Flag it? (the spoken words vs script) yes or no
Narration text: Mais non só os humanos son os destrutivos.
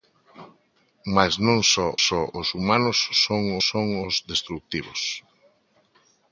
yes